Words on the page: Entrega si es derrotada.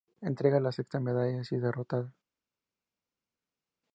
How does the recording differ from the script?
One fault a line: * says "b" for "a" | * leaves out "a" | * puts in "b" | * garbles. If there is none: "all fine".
* puts in "la sexta medalla"